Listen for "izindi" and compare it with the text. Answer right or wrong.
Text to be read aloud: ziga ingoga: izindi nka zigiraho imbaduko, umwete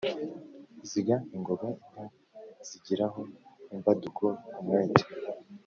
wrong